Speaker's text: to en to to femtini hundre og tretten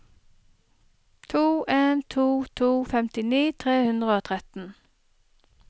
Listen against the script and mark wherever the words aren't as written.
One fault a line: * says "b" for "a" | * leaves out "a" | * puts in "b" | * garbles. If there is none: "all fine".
* puts in "tre"